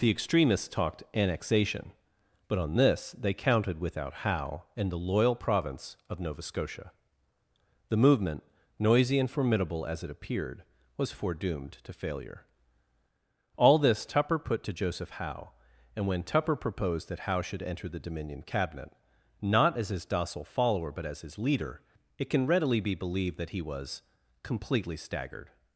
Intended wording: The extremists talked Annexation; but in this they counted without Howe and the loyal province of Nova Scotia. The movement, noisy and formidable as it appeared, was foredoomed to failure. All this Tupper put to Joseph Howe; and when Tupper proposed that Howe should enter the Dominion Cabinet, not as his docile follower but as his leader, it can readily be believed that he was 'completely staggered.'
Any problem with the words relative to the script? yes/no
yes